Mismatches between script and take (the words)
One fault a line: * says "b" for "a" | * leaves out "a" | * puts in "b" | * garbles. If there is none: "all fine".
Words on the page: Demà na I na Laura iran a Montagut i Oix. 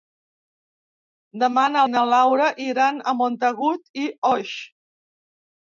all fine